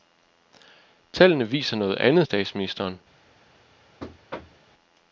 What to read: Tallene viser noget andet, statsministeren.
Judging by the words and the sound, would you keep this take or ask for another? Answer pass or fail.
fail